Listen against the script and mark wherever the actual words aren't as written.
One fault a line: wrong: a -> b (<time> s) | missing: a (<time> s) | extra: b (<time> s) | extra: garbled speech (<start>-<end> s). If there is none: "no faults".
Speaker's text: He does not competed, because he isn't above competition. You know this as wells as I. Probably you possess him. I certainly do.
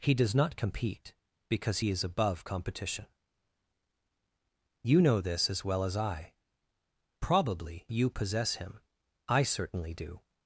wrong: competed -> compete (0.6 s)
wrong: isn't -> is (1.9 s)
wrong: wells -> well (5.6 s)